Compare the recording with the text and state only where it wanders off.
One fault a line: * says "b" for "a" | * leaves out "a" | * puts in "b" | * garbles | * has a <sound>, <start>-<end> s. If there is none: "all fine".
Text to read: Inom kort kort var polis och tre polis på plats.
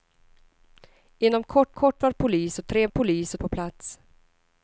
all fine